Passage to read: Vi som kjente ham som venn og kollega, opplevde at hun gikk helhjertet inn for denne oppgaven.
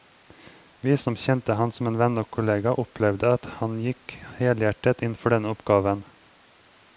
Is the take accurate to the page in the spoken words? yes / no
no